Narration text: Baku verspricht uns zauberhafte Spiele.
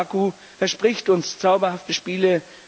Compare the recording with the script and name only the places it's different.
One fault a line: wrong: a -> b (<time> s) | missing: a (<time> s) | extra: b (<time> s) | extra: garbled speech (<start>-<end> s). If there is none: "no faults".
no faults